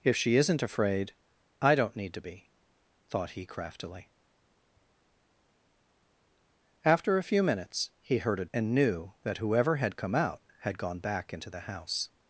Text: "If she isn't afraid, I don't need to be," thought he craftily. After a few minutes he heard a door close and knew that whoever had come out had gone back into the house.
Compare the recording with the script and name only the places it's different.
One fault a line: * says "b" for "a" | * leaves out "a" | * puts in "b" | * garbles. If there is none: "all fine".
* leaves out "door close"